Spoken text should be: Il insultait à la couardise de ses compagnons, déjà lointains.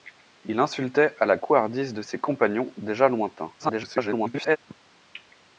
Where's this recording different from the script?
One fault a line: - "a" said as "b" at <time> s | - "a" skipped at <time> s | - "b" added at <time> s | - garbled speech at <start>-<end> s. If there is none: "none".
- garbled speech at 3.6-4.6 s